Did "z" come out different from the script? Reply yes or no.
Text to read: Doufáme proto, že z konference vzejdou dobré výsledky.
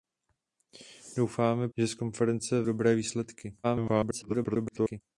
no